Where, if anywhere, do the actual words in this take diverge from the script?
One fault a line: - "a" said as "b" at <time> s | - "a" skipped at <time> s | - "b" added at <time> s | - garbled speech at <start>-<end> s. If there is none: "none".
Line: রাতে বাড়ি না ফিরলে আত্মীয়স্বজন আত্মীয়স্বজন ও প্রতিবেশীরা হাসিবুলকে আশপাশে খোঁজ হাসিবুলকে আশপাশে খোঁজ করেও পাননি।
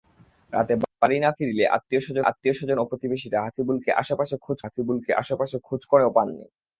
none